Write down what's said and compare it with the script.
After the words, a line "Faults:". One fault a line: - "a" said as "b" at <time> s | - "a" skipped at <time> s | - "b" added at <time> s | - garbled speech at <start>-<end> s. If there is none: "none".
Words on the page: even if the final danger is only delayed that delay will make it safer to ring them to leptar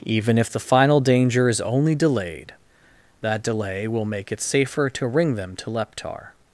even if the final danger is only delayed that delay will make it safer to ring them to leptar
Faults:
none